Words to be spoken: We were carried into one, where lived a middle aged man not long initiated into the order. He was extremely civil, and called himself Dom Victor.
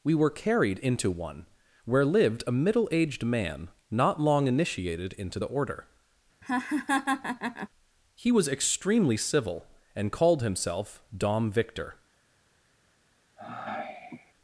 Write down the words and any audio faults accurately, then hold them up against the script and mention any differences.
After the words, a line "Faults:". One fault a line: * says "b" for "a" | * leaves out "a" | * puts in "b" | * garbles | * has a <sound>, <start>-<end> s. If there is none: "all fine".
We were carried into one, where lived a middle aged man not long initiated into the order. He was extremely civil, and called himself Dom Victor.
Faults:
* has a laugh, 6.4-7.7 s
* has a sigh, 13.4-14.3 s